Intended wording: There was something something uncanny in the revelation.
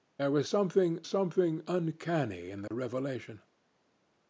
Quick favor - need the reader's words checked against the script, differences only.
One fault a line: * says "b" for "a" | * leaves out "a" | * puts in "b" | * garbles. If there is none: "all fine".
all fine